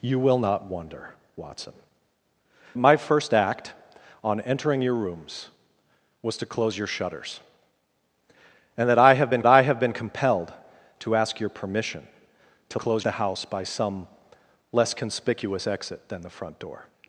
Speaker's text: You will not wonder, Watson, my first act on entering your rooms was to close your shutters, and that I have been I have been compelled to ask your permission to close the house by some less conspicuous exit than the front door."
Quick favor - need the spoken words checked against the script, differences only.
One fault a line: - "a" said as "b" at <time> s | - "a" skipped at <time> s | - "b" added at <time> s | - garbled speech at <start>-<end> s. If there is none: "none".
none